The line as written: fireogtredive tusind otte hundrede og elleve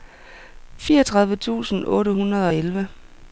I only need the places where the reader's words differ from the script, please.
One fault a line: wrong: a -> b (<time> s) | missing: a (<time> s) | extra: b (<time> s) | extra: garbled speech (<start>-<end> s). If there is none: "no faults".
no faults